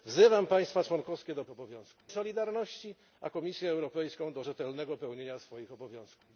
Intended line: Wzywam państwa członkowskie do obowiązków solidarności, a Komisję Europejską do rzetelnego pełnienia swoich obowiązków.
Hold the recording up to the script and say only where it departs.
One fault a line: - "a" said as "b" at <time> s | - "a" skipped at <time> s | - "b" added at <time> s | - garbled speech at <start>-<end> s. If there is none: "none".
none